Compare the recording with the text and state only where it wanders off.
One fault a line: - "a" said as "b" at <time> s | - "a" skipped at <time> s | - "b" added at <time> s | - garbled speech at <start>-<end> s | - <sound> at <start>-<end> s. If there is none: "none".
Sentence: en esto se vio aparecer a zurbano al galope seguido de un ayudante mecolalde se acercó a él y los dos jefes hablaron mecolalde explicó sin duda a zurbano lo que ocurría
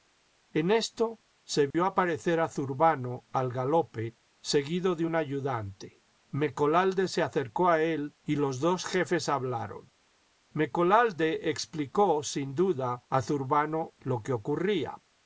- dropout at 1.7-1.7 s